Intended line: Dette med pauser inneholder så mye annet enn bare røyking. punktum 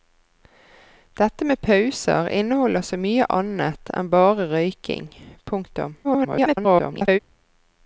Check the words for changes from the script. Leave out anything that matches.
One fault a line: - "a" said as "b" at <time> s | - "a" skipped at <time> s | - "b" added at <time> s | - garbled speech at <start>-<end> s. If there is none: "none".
- garbled speech at 6.0-7.2 s